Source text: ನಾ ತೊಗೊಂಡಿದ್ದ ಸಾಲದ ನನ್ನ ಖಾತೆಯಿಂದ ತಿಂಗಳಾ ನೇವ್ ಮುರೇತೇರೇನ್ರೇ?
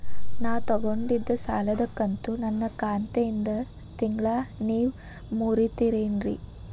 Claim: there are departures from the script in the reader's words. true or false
true